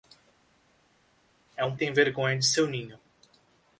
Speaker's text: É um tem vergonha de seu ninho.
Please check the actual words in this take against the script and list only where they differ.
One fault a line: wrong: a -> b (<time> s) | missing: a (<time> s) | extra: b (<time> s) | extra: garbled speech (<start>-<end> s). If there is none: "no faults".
no faults